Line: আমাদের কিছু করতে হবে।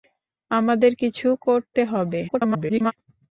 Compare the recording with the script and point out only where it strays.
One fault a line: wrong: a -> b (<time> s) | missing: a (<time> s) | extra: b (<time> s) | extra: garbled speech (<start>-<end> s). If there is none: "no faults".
extra: garbled speech (2.3-2.9 s)